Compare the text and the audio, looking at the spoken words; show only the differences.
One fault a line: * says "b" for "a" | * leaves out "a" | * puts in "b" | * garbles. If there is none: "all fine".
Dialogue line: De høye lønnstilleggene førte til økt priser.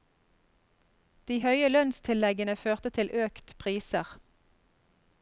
all fine